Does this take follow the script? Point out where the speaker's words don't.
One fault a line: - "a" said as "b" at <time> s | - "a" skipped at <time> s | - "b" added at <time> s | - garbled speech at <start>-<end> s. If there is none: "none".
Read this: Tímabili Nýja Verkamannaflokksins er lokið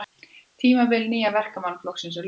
none